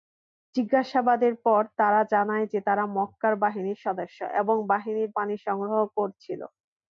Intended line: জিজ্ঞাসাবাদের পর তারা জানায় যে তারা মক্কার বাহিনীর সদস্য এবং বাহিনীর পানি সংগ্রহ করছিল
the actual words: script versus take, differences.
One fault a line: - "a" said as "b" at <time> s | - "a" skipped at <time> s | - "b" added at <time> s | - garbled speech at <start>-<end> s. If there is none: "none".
none